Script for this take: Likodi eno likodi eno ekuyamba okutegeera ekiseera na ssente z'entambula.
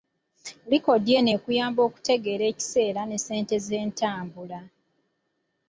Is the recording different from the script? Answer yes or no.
yes